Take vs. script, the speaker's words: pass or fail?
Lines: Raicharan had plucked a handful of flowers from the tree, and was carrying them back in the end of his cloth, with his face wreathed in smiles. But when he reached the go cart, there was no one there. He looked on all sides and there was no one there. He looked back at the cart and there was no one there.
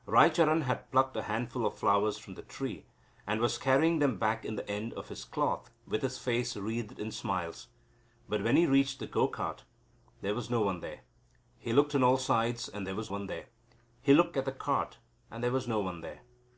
fail